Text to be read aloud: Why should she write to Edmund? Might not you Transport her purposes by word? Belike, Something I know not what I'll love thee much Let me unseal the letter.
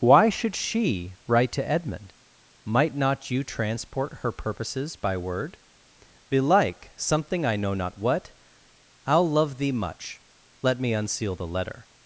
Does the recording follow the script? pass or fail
pass